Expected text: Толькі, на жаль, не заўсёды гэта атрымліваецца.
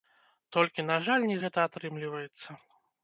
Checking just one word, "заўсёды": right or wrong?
wrong